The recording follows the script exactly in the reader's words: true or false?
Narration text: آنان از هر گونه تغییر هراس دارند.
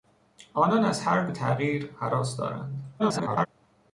false